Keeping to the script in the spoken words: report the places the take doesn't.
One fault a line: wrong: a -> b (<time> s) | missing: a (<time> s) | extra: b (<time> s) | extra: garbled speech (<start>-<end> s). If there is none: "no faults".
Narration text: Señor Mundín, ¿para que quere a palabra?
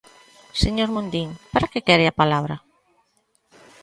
no faults